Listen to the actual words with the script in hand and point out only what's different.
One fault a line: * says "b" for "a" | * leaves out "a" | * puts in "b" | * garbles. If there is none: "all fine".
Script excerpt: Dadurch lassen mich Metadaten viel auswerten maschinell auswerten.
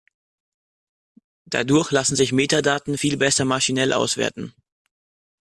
* says "sich" for "mich"
* says "besser" for "auswerten"